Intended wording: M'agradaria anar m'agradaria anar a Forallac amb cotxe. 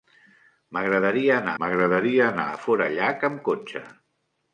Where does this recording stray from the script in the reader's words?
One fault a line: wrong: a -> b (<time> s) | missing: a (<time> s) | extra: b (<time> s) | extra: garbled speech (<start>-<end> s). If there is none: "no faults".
no faults